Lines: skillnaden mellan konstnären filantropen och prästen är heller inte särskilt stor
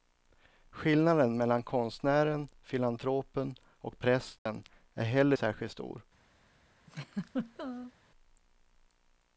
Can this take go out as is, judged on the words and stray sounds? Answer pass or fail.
fail